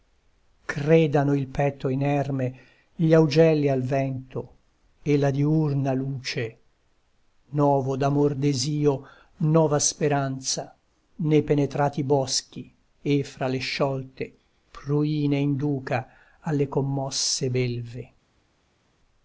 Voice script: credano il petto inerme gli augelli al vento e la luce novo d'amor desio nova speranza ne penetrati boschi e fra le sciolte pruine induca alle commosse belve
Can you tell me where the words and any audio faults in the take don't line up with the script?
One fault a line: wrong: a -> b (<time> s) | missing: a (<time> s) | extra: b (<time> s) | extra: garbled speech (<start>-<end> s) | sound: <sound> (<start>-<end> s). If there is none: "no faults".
extra: diurna (5.3 s)